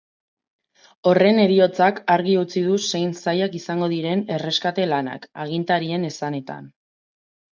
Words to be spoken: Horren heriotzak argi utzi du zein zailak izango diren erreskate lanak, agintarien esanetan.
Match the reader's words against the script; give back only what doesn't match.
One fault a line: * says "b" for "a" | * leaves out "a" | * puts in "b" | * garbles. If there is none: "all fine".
all fine